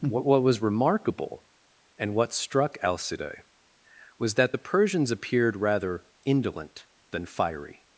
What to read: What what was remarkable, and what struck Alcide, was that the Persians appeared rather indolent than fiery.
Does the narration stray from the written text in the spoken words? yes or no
no